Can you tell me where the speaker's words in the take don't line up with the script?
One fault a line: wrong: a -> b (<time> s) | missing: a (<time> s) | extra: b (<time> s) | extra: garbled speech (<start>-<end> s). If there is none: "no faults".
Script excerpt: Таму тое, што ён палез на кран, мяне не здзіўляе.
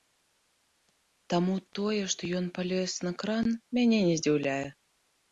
no faults